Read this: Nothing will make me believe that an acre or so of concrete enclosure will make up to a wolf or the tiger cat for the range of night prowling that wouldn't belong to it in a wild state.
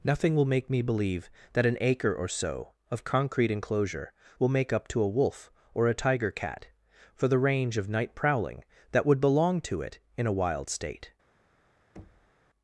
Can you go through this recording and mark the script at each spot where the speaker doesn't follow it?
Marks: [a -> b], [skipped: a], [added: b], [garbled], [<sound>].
Nothing will make me believe that an acre or so of concrete enclosure will make up to a wolf or [the -> a] tiger cat for the range of night prowling that [wouldn't -> would] belong to it in a wild state. [thud]